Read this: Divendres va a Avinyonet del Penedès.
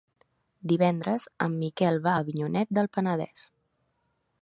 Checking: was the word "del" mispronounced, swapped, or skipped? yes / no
no